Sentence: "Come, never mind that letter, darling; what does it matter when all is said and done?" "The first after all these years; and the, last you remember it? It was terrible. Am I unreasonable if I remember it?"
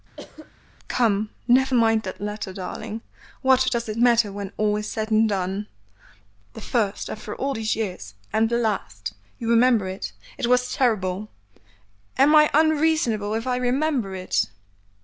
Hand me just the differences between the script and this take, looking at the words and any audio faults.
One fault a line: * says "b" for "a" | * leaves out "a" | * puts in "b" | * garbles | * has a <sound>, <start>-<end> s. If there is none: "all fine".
* has a cough, 0.2-0.5 s